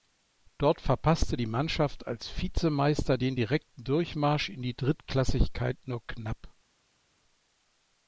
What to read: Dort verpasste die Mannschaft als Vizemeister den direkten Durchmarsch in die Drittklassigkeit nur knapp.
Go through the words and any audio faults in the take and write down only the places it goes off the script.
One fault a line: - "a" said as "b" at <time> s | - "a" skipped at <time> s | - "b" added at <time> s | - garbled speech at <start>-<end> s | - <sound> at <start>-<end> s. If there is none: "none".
none